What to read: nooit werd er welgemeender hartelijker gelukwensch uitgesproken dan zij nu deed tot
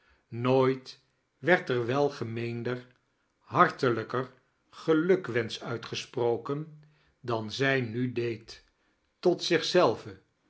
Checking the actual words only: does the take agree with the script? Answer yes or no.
yes